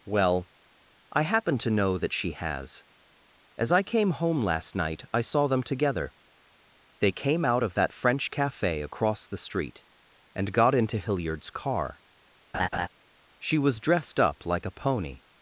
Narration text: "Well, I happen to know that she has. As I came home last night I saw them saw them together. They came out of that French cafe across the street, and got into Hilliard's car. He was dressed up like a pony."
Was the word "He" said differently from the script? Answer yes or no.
yes